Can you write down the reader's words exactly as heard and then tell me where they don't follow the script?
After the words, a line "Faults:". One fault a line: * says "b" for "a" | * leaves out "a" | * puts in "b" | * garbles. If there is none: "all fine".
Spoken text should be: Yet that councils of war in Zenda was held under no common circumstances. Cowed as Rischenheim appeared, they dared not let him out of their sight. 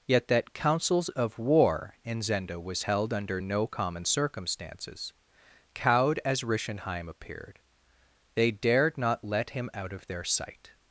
Yet that councils of war in Zenda was held under no common circumstances. Cowed as Rischenheim appeared, they dared not let him out of their sight.
Faults:
all fine